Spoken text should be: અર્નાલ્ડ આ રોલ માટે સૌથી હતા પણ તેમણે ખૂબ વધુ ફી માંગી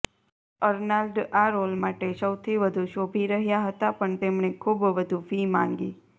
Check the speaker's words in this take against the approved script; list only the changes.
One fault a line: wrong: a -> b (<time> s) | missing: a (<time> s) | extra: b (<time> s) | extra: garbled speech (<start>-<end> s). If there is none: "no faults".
extra: વધુ શોભી રહ્યા (2.6 s)